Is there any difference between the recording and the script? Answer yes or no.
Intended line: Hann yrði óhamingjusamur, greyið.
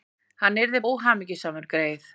no